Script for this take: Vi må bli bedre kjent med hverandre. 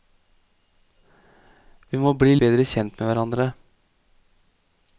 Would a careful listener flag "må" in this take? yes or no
no